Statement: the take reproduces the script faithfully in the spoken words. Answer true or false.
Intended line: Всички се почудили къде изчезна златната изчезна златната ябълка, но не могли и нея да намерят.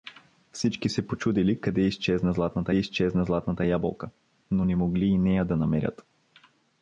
true